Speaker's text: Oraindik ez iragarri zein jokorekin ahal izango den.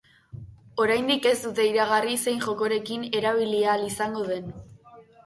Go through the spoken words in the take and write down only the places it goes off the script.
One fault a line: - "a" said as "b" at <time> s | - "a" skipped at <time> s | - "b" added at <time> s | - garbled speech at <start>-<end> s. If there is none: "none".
- "dute" added at 1.5 s
- "erabili" added at 3.2 s